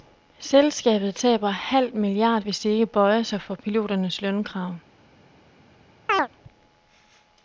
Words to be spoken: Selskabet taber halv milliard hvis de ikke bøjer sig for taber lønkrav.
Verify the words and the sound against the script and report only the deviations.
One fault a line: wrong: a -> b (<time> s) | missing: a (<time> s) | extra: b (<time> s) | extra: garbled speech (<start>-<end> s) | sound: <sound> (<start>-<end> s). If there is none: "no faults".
wrong: taber -> piloternes (3.5 s)
sound: chirp (6.1-6.3 s)